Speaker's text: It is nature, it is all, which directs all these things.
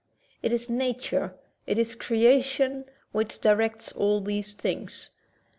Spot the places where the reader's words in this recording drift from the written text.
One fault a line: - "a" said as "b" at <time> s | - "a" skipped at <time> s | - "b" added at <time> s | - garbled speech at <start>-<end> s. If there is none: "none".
- "all" said as "creation" at 1.9 s